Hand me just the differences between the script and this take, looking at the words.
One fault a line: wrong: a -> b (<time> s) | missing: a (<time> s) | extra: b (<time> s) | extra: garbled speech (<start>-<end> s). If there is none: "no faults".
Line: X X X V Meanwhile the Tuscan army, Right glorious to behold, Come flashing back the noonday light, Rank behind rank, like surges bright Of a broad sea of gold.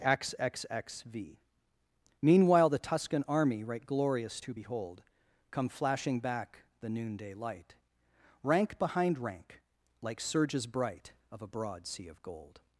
no faults